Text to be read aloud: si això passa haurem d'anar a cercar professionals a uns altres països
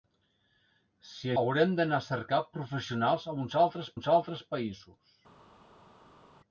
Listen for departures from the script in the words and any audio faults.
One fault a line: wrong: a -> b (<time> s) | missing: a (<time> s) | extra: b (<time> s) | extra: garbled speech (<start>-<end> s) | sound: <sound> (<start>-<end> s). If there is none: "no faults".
missing: això passa (1.3 s)
extra: uns altres (4.0 s)